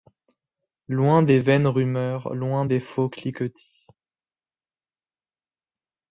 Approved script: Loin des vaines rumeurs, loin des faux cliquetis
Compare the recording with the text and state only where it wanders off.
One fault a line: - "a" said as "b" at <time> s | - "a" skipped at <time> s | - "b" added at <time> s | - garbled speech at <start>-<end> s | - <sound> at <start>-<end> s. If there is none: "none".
none